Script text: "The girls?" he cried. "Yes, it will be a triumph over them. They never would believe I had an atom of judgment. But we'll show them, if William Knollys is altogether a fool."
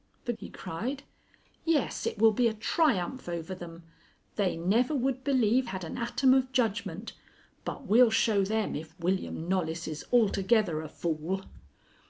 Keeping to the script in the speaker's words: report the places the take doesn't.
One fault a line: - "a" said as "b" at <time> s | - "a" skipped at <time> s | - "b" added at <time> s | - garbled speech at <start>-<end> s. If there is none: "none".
- "girls" skipped at 0.3 s
- "I" skipped at 5.7 s